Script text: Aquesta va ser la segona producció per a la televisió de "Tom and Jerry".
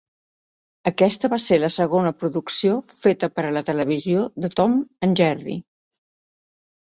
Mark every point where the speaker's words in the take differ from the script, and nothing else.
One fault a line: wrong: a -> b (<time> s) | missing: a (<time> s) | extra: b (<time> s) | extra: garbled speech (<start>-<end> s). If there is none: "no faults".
extra: feta (3.0 s)